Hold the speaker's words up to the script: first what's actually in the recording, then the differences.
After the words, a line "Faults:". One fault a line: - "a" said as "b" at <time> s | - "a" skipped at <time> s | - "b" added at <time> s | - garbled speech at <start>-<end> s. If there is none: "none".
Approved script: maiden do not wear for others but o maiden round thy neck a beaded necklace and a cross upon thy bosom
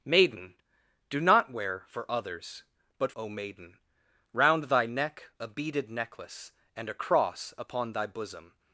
maiden do not wear for others but o maiden round thy neck a beaded necklace and a cross upon thy bosom
Faults:
none